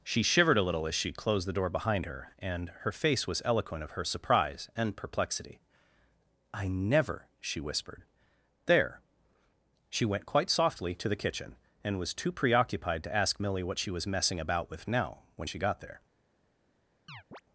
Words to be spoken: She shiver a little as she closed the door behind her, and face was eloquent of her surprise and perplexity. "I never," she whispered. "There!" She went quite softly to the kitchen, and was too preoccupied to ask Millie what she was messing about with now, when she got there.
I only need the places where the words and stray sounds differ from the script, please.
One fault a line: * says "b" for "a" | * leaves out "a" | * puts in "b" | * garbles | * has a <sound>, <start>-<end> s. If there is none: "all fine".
* says "shivered" for "shiver"
* puts in "her"
* has a chirp, 17.1-17.4 s